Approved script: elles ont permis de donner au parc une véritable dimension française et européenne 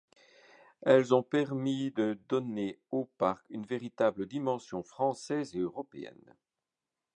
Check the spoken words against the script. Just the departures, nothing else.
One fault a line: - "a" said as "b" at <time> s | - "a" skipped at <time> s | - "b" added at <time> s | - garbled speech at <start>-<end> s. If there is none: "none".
none